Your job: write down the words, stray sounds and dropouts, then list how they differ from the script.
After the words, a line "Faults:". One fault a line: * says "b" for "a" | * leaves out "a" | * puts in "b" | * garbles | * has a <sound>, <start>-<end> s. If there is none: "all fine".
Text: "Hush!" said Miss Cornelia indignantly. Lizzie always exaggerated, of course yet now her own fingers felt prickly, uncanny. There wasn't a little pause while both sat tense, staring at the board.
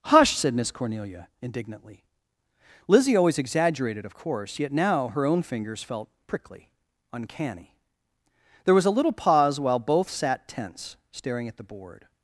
"Hush!" said Miss Cornelia indignantly. Lizzie always exaggerated, of course yet now her own fingers felt prickly, uncanny. There was a little pause while both sat tense, staring at the board.
Faults:
* says "was" for "wasn't"